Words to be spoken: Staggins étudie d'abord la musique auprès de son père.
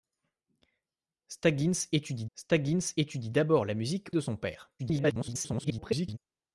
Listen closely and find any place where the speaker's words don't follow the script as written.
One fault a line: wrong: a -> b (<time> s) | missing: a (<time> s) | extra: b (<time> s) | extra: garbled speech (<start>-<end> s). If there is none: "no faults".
extra: staggins étudie (2.3 s)
missing: auprès (4.1 s)
extra: garbled speech (4.8-6.2 s)